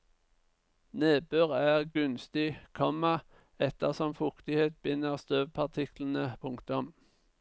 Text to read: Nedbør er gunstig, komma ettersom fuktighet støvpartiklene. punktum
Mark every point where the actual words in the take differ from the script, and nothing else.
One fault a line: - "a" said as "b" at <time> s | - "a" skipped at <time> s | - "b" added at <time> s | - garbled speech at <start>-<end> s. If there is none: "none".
- "binder" added at 4.9 s